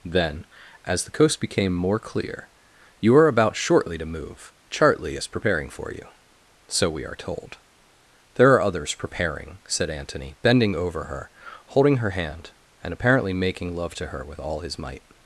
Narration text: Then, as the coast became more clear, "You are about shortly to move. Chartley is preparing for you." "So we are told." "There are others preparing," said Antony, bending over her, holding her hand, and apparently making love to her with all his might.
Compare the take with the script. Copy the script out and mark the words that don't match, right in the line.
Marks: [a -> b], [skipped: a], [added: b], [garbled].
Then, as the coast became more clear, "You are about shortly to move. Chartley is preparing for you." "So we are told." "There are others preparing," said Antony, bending over her, holding her hand, and apparently making love to her with all his might.